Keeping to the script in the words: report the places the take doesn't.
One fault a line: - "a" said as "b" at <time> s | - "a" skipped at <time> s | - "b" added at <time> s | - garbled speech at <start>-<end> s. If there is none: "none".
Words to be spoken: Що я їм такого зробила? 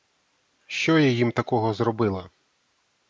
none